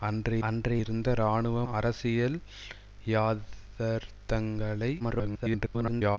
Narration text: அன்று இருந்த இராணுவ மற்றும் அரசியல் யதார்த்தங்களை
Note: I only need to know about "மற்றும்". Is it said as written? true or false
false